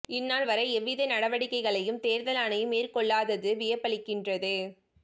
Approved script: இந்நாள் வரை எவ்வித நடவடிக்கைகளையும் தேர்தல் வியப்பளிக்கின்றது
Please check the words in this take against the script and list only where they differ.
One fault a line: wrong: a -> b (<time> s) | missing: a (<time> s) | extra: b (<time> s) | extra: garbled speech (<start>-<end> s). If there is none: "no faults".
extra: ஆணையம் மேற்கொள்ளாதது (2.4 s)